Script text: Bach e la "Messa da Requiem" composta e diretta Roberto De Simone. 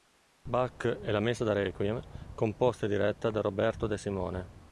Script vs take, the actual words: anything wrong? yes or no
yes